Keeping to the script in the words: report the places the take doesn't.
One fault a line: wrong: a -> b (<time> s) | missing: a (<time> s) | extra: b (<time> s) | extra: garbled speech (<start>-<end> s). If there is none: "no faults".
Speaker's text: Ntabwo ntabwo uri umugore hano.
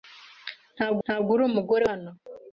no faults